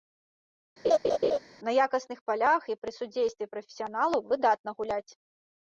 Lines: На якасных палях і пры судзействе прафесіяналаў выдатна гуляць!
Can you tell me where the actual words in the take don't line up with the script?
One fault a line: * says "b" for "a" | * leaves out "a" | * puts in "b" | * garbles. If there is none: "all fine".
all fine